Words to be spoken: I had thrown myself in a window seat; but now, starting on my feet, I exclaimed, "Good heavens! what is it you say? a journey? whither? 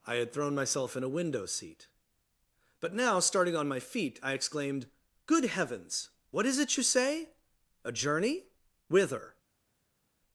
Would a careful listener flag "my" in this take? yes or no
no